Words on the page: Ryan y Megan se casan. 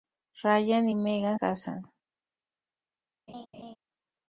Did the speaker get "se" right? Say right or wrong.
wrong